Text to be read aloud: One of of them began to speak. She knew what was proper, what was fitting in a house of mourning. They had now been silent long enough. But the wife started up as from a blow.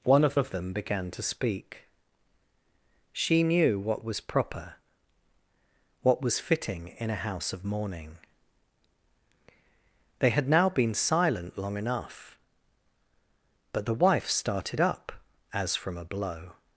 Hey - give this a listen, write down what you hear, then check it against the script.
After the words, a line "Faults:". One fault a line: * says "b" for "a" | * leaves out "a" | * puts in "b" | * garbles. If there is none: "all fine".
One of of them began to speak. She knew what was proper, what was fitting in a house of mourning. They had now been silent long enough. But the wife started up as from a blow.
Faults:
all fine